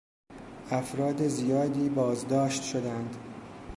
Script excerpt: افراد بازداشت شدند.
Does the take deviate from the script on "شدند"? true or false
false